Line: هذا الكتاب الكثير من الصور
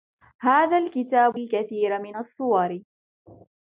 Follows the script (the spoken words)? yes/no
yes